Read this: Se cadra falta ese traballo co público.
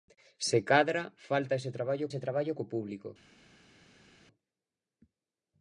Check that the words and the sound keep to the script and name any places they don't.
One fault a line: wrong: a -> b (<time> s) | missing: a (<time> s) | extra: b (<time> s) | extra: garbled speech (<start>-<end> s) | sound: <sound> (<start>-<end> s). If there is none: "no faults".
extra: ese traballo (2.1 s)